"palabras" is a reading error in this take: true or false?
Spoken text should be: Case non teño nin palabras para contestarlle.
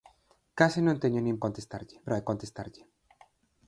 true